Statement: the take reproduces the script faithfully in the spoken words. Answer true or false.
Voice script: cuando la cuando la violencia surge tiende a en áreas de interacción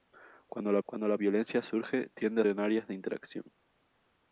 true